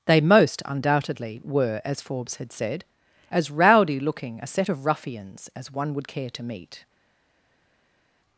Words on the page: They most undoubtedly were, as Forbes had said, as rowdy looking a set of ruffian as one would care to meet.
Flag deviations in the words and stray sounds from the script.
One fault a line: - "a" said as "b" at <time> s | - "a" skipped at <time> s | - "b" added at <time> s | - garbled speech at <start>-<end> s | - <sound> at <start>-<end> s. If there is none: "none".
- "ruffian" said as "ruffians" at 4.9 s